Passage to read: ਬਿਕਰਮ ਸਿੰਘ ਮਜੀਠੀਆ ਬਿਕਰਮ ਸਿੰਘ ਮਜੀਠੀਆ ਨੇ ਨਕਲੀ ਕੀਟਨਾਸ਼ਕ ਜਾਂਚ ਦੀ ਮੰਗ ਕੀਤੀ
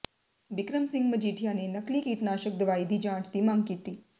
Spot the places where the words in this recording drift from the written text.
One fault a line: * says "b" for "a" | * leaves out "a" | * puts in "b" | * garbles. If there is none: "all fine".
* leaves out "ਬਿਕਰਮ ਸਿੰਘ ਮਜੀਠੀਆ"
* puts in "ਦਵਾਈ ਦੀ"